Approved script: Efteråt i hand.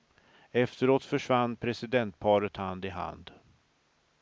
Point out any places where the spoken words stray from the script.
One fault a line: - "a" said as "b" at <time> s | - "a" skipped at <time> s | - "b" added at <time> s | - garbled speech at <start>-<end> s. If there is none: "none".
- "försvann presidentparet hand" added at 1.0 s